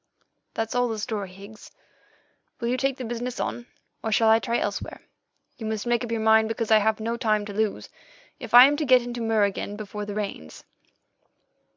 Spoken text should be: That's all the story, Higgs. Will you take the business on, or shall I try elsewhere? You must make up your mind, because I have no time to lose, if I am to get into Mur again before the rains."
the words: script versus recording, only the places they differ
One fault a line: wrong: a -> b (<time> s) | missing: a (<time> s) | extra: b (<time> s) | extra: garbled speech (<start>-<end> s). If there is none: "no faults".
no faults